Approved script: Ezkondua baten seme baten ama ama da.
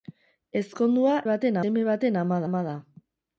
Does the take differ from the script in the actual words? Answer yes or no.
no